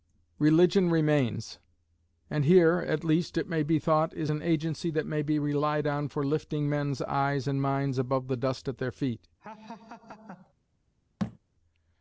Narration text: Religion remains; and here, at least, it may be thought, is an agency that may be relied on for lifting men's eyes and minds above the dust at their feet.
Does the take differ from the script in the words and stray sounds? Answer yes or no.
yes